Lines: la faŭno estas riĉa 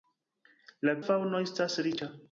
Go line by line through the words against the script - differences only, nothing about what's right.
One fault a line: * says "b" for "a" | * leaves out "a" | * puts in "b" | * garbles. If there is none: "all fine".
all fine